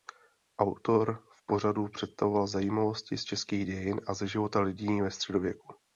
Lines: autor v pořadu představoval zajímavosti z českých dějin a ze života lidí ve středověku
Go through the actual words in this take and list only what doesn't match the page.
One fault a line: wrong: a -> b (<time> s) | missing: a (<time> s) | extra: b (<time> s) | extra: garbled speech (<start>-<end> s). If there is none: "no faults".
no faults